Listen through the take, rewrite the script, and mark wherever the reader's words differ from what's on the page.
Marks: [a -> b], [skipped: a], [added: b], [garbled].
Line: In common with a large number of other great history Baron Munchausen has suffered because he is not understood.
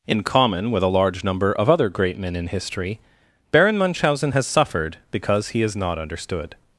In common with a large number of other great [added: men in] history Baron Munchausen has suffered because he is not understood.